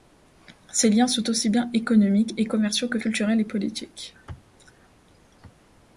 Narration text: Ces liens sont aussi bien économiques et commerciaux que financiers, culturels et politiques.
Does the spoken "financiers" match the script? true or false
false